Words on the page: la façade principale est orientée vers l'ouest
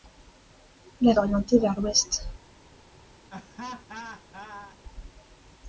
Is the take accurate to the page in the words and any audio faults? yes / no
no